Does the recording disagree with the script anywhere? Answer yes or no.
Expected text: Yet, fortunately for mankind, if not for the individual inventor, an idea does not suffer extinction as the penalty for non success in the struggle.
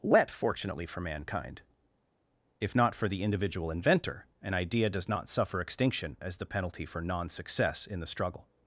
yes